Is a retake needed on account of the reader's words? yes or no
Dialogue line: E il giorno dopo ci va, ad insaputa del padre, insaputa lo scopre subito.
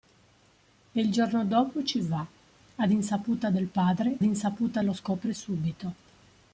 no